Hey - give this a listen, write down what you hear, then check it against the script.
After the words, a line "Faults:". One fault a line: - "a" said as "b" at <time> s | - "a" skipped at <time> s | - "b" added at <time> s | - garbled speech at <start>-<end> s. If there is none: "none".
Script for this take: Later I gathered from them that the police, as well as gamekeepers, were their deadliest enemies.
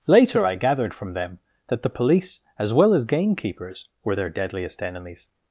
Later I gathered from them that the police, as well as gamekeepers, were their deadliest enemies.
Faults:
none